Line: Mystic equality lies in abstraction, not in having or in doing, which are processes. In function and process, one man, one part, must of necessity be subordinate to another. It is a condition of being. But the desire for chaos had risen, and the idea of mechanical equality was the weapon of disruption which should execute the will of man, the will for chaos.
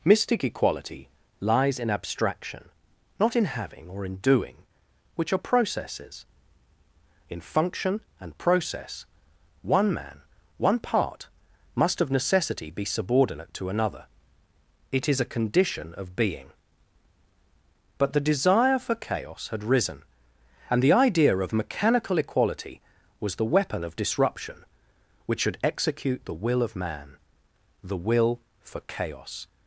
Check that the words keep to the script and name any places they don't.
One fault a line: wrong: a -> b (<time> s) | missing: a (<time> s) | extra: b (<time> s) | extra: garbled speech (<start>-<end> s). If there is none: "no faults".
no faults